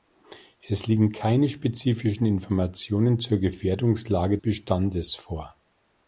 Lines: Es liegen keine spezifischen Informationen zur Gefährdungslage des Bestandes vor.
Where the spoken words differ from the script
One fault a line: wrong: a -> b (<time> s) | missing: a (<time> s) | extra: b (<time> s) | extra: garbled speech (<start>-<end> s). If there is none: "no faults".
missing: des (4.4 s)